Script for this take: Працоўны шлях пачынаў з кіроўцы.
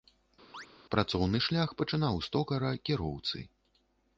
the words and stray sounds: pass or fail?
fail